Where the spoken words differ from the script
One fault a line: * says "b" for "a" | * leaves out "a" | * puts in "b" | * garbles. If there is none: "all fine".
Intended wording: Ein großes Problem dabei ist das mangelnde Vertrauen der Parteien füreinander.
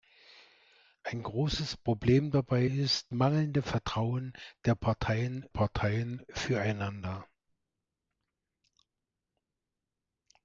* leaves out "das"
* puts in "Parteien"